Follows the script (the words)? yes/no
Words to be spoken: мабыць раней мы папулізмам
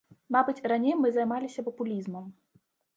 no